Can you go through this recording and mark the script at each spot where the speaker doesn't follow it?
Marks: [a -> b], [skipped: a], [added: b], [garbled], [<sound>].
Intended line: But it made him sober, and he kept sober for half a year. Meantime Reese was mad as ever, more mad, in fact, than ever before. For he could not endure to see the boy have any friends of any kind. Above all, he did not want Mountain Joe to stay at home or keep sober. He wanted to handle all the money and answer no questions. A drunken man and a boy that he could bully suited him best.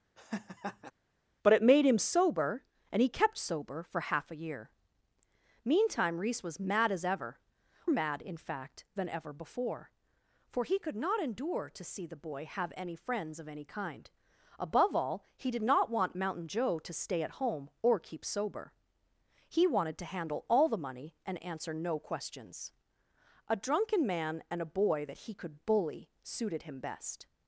[laugh] But it made him sober, and he kept sober for half a year. Meantime Reese was mad as ever, [skipped: more] mad, in fact, than ever before. For he could not endure to see the boy have any friends of any kind. Above all, he did not want Mountain Joe to stay at home or keep sober. He wanted to handle all the money and answer no questions. A drunken man and a boy that he could bully suited him best.